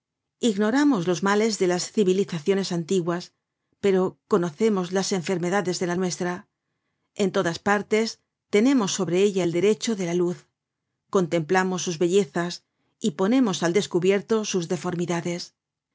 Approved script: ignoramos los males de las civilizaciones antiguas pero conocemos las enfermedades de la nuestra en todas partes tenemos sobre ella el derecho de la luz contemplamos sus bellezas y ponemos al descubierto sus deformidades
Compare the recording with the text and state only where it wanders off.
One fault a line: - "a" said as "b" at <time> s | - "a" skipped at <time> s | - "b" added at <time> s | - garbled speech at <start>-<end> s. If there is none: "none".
none